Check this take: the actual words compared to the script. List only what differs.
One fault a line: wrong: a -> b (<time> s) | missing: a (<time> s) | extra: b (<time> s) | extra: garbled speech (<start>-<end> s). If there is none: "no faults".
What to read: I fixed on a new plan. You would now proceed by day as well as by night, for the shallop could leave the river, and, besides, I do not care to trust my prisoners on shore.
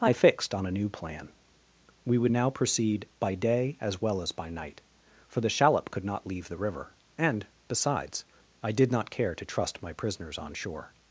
wrong: You -> We (2.0 s)
extra: not (6.0 s)
wrong: do -> did (8.7 s)